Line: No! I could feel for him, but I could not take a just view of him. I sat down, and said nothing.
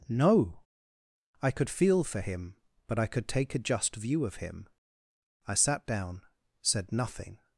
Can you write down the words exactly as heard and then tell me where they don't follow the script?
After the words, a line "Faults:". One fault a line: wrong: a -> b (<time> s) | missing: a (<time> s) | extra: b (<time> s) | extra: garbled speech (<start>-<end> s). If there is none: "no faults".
No! I could feel for him, but I could take a just view of him. I sat down, said nothing.
Faults:
missing: not (3.3 s)
missing: and (6.2 s)